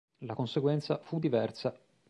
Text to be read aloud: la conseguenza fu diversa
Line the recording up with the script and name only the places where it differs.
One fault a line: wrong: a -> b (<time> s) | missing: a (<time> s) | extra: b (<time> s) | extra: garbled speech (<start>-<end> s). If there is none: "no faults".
no faults